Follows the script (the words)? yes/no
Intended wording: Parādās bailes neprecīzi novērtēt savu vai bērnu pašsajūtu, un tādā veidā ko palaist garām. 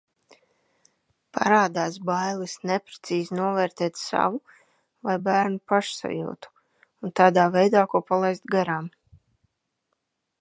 yes